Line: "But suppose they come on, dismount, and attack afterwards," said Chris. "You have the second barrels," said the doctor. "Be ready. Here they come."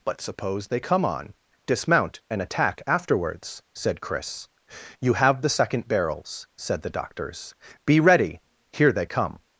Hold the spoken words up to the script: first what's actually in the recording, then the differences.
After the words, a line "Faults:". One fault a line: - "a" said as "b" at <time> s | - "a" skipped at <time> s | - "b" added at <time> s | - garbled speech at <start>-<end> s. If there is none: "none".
"But suppose they come on, dismount, and attack afterwards," said Chris. "You have the second barrels," said the doctors. "Be ready. Here they come."
Faults:
- "doctor" said as "doctors" at 6.9 s